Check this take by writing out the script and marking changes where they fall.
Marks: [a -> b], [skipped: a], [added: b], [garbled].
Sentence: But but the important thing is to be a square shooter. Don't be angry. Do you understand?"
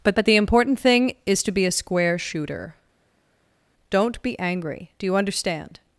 But but the important thing is to be a square shooter. Don't be angry. Do you understand?"